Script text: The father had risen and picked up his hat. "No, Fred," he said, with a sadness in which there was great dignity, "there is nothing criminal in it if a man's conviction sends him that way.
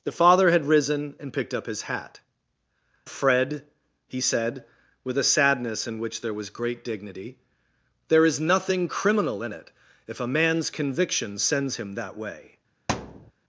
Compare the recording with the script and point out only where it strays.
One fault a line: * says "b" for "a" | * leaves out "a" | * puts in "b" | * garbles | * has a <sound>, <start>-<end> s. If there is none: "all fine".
* leaves out "No"
* has a thud, 12.9-13.3 s